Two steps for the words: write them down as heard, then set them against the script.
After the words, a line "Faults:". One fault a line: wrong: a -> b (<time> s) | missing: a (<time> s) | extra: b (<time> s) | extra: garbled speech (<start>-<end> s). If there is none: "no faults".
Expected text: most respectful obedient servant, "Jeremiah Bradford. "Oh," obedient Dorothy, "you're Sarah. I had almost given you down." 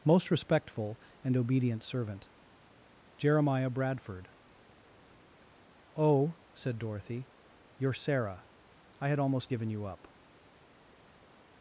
most respectful and obedient servant, "Jeremiah Bradford. "Oh," said Dorothy, "you're Sarah. I had almost given you up."
Faults:
extra: and (1.2 s)
wrong: obedient -> said (6.5 s)
wrong: down -> up (9.9 s)